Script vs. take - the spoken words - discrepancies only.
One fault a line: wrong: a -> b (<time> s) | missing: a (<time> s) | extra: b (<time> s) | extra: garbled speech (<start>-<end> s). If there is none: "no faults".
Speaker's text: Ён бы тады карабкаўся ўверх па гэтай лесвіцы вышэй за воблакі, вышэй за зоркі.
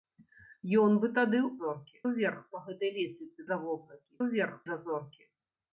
wrong: карабкаўся -> зоркі (1.6 s)
missing: вышэй (3.4 s)
wrong: вышэй -> ўверх (4.2 s)